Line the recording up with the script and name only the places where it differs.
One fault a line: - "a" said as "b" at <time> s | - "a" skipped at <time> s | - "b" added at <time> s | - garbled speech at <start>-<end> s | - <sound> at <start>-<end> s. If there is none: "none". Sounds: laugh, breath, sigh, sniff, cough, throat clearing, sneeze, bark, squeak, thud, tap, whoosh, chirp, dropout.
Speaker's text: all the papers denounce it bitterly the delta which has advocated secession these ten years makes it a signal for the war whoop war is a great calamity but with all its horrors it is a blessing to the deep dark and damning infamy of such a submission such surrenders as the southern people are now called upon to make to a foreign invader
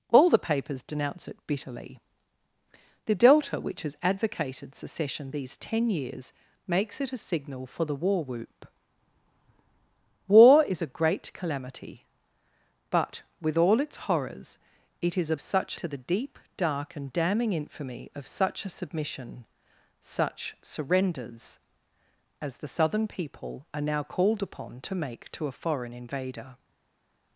- "blessing" said as "such" at 15.4 s